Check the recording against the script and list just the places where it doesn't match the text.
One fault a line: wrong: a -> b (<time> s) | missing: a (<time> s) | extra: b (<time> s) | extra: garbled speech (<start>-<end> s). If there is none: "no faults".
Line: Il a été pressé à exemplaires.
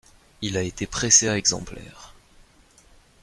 no faults